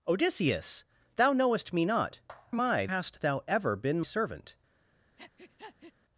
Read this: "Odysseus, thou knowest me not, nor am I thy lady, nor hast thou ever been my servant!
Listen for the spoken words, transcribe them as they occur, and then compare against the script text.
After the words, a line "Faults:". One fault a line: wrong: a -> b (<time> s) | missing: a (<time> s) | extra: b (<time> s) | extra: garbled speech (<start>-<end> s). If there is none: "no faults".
"Odysseus, thou knowest me not, am I hast thou ever been servant!
Faults:
missing: nor (2.2 s)
missing: thy lady nor (2.9 s)
missing: my (4.0 s)